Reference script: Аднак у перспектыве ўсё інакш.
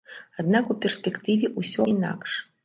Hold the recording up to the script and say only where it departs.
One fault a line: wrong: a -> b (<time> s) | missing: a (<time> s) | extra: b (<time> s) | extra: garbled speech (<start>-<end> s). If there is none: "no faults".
no faults